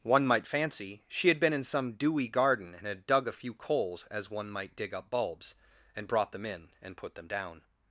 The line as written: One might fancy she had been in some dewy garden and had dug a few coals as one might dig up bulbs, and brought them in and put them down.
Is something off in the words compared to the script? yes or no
no